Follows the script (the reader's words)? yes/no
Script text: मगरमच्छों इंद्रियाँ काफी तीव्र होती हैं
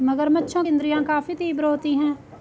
yes